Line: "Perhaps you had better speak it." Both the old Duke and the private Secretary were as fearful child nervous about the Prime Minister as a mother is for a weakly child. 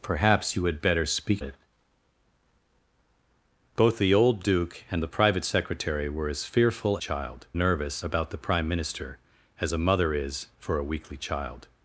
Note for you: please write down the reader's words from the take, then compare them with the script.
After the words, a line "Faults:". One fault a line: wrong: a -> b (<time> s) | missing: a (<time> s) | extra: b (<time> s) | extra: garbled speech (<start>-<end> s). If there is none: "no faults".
"Perhaps you had better speak it." Both the old Duke and the private Secretary were as fearful child nervous about the Prime Minister as a mother is for a weakly child.
Faults:
no faults